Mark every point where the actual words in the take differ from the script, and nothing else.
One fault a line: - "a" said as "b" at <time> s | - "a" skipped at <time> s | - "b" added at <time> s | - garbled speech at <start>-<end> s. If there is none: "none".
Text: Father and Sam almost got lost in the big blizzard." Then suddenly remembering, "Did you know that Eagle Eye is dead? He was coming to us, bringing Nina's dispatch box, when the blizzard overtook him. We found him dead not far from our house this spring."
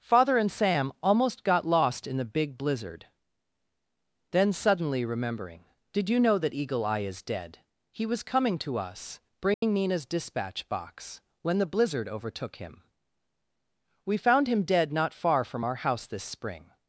none